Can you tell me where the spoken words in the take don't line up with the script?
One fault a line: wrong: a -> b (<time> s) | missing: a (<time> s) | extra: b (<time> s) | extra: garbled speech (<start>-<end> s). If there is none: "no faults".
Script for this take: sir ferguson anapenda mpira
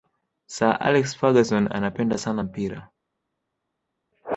extra: alex (0.8 s)
extra: sana (2.2 s)